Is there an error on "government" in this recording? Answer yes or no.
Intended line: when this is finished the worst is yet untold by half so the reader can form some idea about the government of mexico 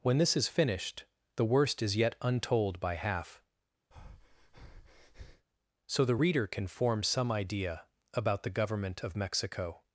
no